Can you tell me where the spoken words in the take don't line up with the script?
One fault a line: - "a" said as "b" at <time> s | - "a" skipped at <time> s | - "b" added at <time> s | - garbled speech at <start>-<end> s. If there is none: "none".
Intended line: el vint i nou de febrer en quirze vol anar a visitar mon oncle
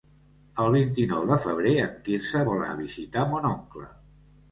- "anar" skipped at 2.6 s